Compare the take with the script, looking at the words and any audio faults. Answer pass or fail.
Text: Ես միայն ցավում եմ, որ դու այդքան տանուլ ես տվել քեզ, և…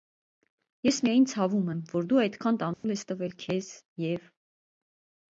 fail